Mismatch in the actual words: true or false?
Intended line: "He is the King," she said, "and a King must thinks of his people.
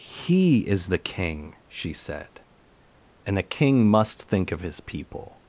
true